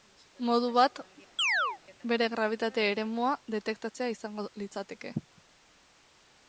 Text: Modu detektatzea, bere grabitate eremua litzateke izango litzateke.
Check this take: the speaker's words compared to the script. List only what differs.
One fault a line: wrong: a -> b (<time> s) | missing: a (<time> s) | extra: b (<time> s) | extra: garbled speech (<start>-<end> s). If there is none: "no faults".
wrong: detektatzea -> bat (0.8 s)
wrong: litzateke -> detektatzea (3.6 s)